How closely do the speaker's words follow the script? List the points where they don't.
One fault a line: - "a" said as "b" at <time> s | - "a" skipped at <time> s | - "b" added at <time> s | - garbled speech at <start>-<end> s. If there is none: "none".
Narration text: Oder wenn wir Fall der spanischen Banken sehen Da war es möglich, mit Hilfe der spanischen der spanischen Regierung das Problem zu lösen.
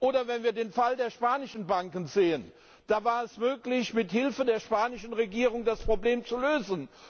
- "den" added at 0.5 s
- "der spanischen" skipped at 5.1 s